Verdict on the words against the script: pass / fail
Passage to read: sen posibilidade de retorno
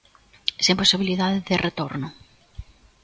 pass